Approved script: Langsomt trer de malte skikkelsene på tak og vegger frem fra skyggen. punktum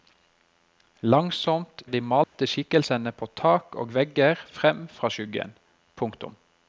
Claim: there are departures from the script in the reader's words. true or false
true